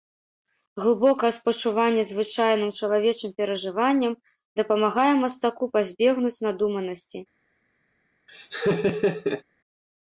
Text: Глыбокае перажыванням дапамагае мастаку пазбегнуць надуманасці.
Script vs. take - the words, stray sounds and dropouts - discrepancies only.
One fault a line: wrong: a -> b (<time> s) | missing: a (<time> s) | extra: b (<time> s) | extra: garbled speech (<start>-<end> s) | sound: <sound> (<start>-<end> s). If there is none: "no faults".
extra: спачуванне звычайным чалавечым (1.4 s)
sound: laugh (8.3-9.4 s)